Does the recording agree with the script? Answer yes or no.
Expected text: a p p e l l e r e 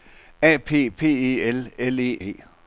no